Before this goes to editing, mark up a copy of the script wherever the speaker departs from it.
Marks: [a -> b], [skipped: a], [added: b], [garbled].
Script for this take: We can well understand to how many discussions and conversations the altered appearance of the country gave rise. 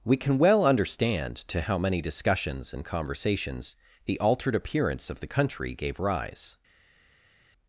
We can well understand to how many discussions and conversations the altered appearance of the country gave rise.